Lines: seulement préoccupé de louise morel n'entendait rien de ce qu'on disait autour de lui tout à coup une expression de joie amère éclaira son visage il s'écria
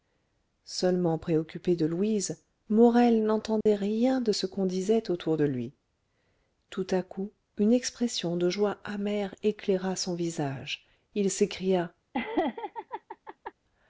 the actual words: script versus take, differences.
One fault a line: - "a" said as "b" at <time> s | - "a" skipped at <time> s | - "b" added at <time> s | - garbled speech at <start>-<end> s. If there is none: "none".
none